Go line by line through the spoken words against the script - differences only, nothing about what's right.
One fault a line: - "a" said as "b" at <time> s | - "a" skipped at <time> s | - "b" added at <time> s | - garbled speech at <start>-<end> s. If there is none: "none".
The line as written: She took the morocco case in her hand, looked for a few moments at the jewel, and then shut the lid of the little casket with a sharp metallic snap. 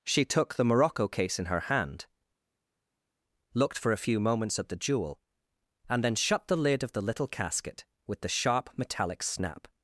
- "a" said as "the" at 8.2 s